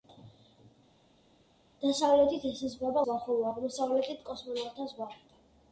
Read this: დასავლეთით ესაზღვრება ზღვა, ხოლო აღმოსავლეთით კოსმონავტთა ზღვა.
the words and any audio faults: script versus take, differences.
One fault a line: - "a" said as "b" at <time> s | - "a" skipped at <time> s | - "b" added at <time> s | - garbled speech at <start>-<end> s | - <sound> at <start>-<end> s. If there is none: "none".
none